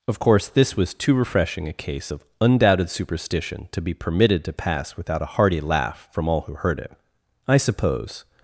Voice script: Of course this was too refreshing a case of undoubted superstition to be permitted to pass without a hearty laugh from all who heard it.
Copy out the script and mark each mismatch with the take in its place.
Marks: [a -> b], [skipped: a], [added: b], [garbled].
Of course this was too refreshing a case of undoubted superstition to be permitted to pass without a hearty laugh from all who heard it. [added: I suppose]